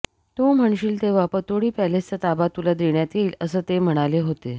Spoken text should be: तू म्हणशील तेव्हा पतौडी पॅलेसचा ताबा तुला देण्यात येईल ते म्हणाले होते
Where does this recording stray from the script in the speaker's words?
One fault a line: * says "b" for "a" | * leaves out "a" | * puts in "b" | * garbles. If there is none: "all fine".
* puts in "असं"